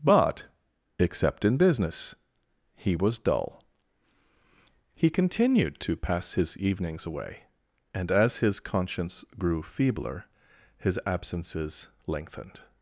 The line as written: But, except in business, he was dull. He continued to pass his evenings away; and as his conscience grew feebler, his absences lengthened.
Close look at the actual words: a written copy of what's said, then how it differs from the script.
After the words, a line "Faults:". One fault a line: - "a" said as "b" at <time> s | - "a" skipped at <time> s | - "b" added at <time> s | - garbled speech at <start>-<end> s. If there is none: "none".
But, except in business, he was dull. He continued to pass his evenings away; and as his conscience grew feebler, his absences lengthened.
Faults:
none